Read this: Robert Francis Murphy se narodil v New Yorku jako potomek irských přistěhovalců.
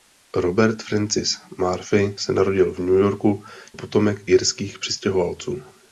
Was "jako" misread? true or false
true